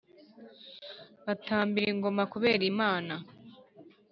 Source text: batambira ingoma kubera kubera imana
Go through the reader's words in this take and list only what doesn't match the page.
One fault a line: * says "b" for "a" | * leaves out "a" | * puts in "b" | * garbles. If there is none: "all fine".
* leaves out "kubera"